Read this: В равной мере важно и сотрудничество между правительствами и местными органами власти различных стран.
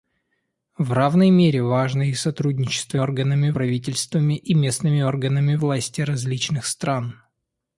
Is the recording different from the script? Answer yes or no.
yes